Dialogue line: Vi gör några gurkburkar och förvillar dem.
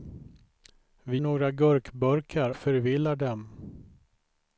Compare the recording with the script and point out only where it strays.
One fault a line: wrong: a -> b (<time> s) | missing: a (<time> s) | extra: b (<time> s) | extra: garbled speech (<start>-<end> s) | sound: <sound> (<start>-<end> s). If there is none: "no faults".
missing: gör (1.2 s)
missing: och (2.5 s)